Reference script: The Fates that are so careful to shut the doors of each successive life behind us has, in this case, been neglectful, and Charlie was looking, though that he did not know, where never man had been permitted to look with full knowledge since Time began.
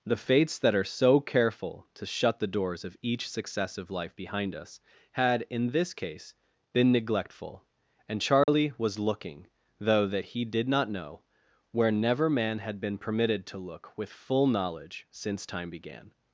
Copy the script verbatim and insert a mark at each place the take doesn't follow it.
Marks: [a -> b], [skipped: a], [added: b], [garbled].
The Fates that are so careful to shut the doors of each successive life behind us [has, -> had] in this case, been neglectful, and Charlie was looking, though that he did not know, where never man had been permitted to look with full knowledge since Time began.